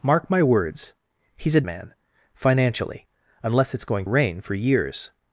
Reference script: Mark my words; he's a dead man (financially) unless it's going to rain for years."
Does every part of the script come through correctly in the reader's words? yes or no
no